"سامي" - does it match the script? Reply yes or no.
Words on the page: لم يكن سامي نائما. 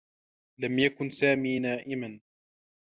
yes